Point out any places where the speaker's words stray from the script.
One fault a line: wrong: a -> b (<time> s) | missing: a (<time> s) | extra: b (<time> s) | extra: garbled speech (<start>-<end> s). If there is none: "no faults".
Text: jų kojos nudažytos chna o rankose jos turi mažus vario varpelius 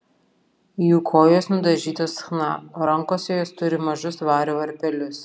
no faults